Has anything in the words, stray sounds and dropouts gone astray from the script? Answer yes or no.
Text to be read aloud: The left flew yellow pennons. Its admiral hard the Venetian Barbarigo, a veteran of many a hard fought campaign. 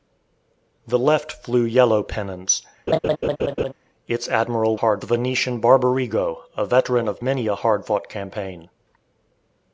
yes